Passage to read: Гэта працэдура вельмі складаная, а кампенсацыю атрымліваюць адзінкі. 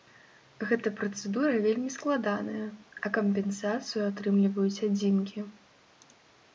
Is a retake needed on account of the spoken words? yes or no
no